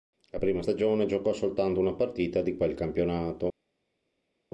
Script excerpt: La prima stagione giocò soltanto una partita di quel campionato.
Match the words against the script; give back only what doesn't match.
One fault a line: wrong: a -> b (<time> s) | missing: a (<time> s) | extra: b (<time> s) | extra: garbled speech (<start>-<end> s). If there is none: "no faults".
no faults